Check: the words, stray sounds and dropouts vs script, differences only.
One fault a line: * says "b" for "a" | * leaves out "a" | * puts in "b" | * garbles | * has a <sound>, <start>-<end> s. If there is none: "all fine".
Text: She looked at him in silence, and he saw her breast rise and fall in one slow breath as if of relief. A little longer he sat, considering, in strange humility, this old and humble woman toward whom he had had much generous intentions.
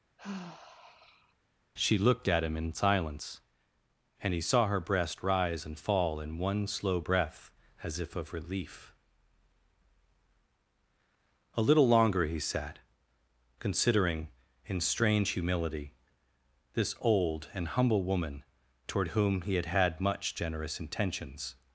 * has a sigh, 0.2-1.3 s